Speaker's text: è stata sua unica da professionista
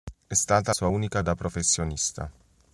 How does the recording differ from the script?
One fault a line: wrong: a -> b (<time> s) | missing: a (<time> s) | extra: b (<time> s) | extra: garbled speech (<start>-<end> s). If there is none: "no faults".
no faults